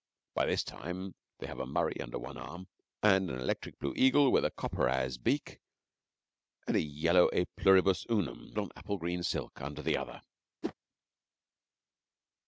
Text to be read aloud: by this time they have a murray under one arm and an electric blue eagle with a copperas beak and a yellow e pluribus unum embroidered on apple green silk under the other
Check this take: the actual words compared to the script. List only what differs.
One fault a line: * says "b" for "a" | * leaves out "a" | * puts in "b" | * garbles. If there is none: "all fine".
* leaves out "embroidered"